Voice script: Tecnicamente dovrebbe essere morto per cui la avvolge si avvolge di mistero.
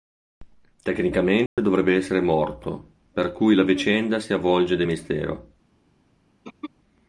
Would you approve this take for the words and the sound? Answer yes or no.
no